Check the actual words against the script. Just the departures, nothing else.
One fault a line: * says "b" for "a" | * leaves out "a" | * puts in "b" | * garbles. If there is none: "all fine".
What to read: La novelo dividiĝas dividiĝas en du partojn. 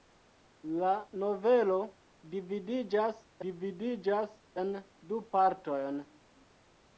all fine